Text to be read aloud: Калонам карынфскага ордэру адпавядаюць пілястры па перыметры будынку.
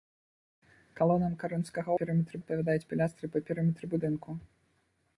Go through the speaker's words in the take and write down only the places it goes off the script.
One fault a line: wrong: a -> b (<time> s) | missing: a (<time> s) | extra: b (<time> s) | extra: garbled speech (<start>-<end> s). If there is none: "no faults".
wrong: ордэру -> перыметры (2.0 s)